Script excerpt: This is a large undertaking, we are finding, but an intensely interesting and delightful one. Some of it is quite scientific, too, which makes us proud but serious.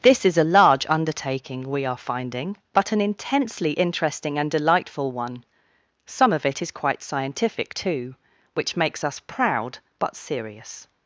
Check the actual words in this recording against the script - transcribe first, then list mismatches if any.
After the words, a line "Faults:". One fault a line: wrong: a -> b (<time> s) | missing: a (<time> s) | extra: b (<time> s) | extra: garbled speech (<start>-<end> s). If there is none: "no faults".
This is a large undertaking, we are finding, but an intensely interesting and delightful one. Some of it is quite scientific, too, which makes us proud but serious.
Faults:
no faults